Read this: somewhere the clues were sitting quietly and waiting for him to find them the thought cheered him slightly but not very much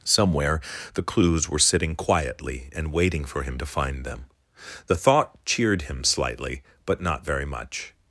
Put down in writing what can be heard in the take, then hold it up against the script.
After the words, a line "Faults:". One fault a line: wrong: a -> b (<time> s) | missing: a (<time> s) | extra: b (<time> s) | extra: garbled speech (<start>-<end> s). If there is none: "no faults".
somewhere the clues were sitting quietly and waiting for him to find them the thought cheered him slightly but not very much
Faults:
no faults